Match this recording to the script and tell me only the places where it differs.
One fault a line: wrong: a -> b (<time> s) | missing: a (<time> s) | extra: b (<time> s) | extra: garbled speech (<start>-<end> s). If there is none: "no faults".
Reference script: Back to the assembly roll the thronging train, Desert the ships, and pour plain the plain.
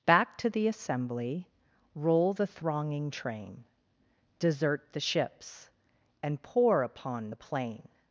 wrong: plain -> upon (6.8 s)